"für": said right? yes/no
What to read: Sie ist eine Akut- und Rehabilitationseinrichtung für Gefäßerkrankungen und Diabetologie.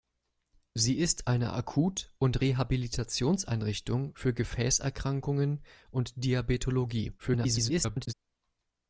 yes